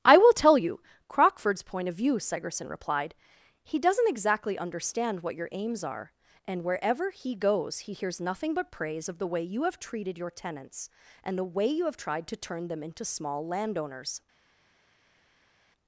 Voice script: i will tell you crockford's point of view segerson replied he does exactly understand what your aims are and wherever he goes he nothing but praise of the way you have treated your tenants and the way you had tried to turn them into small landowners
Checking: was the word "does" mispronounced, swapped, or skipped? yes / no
yes